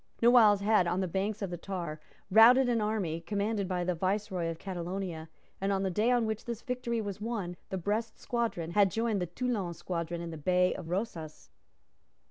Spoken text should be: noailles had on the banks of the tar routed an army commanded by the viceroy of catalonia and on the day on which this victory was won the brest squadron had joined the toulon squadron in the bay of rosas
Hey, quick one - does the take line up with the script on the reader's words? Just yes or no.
yes